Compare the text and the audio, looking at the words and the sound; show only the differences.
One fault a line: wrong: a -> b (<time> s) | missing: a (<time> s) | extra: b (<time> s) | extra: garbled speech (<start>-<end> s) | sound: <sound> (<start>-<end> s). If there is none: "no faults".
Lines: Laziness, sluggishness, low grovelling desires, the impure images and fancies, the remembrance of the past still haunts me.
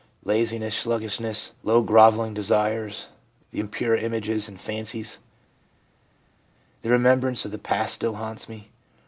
no faults